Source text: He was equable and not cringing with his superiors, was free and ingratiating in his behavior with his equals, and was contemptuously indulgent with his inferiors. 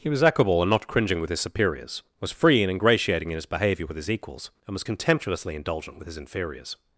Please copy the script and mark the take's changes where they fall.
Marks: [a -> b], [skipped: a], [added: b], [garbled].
He was equable and not cringing with his superiors, was free and ingratiating in his behavior with his equals, and was contemptuously indulgent with his inferiors.